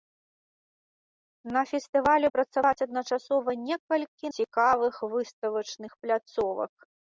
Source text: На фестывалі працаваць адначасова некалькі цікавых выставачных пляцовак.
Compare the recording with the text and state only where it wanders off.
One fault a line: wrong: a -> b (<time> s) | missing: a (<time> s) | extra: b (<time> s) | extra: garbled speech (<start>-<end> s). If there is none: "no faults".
no faults